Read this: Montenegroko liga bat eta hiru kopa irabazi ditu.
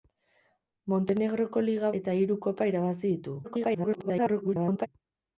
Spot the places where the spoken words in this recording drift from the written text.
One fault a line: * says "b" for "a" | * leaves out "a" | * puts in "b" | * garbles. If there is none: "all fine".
* leaves out "bat"
* garbles